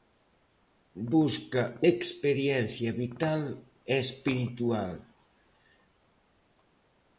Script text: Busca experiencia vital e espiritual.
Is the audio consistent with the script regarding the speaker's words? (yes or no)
yes